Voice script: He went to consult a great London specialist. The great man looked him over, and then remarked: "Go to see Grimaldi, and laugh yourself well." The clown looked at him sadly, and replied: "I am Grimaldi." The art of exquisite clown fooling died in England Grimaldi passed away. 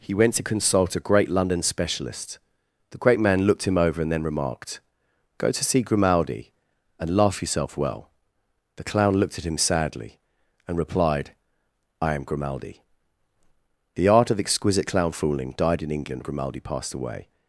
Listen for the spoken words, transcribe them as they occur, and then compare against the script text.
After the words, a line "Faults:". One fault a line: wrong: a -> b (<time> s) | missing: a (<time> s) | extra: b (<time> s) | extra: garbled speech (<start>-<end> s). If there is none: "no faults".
He went to consult a great London specialist. The great man looked him over, and then remarked: "Go to see Grimaldi, and laugh yourself well." The clown looked at him sadly, and replied: "I am Grimaldi." The art of exquisite clown fooling died in England Grimaldi passed away.
Faults:
no faults